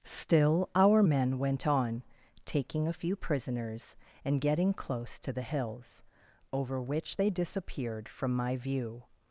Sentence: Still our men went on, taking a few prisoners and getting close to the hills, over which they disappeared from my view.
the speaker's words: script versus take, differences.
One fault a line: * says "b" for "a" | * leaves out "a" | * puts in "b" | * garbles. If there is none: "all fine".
all fine